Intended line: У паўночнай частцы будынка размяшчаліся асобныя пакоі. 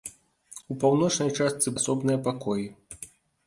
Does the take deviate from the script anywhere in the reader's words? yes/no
yes